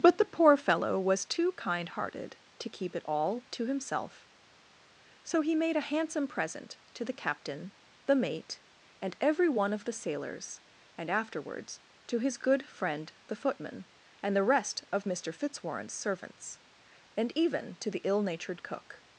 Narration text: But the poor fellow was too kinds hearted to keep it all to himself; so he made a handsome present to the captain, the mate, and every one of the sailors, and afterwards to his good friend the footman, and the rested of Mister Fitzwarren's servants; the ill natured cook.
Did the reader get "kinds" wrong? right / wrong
wrong